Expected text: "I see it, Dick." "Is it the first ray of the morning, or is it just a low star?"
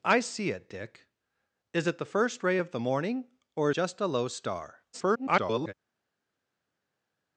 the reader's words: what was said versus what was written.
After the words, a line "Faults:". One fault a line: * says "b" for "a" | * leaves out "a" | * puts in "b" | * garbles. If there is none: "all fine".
"I see it, Dick." "Is it the first ray of the morning, or just a low star?" [garbled]
Faults:
* leaves out "is it"
* garbles